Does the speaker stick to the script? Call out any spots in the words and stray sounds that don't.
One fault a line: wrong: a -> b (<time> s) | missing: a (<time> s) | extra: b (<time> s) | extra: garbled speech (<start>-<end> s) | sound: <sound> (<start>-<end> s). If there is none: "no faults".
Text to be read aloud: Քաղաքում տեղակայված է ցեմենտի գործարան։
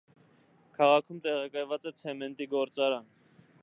no faults